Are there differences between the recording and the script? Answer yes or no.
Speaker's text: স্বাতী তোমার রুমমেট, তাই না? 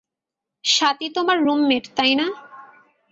no